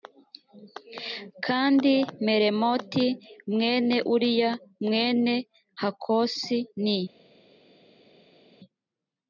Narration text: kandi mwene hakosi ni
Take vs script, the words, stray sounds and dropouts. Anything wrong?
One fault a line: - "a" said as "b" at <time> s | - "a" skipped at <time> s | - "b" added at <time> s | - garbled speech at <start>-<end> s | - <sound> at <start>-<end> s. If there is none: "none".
- "meremoti mwene uriya" added at 2.2 s